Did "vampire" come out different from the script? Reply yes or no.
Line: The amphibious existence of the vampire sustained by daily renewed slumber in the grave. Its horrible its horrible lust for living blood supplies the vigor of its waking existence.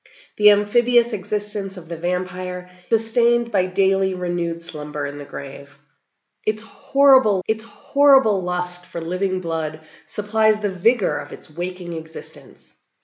no